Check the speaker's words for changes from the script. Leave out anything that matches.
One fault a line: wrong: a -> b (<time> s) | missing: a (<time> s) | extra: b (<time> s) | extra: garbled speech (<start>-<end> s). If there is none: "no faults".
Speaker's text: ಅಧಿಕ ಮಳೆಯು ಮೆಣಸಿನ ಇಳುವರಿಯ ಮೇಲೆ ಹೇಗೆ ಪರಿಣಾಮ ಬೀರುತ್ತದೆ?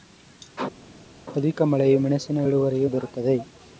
missing: ಮೇಲೆ ಹೇಗೆ ಪರಿಣಾಮ (2.9 s)